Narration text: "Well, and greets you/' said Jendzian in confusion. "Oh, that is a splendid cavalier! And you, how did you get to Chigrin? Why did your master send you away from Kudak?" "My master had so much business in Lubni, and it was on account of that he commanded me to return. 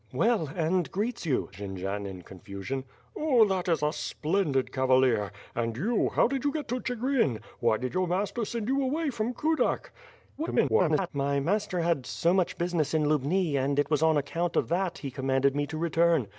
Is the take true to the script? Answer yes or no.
no